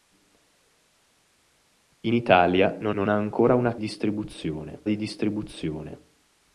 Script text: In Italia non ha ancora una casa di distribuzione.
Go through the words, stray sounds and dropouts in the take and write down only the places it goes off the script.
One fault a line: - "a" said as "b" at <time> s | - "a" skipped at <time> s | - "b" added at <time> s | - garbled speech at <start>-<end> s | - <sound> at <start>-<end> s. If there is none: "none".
- "non" added at 2.9 s
- "casa" said as "distribuzione" at 3.8 s